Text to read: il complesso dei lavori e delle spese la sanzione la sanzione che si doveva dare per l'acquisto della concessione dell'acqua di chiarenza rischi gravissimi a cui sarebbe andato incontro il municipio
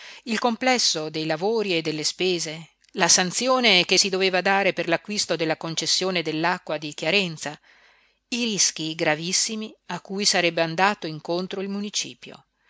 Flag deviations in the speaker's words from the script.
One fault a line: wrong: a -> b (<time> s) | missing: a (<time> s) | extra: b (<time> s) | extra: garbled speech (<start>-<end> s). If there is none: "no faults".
missing: la sanzione (3.8 s)
extra: i (8.3 s)